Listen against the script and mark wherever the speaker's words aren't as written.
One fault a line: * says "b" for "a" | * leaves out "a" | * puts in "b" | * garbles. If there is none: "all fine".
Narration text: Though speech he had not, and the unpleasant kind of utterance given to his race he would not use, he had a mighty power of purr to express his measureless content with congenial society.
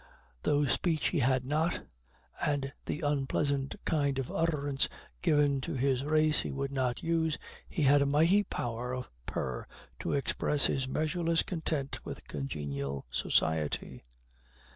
all fine